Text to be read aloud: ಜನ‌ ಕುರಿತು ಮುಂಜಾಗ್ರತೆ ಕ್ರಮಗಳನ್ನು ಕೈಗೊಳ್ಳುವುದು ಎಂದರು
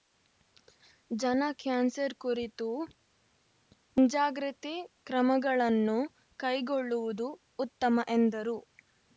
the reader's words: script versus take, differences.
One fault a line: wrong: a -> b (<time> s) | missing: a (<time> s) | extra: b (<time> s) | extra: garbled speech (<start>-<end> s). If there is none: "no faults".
extra: ಕ್ಯಾನ್ಸರ್ (1.6 s)
extra: ಉತ್ತಮ (7.6 s)